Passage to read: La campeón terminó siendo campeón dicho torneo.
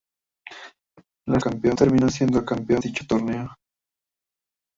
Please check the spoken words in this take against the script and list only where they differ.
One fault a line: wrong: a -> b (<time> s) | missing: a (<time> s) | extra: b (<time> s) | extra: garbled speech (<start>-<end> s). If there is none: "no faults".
no faults